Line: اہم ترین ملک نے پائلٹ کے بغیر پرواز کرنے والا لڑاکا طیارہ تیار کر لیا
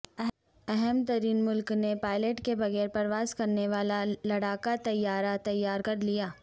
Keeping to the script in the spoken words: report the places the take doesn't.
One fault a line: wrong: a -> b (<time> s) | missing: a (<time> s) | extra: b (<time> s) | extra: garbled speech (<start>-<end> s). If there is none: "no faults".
no faults